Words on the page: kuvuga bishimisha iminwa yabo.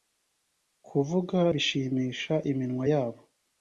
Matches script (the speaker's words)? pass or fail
pass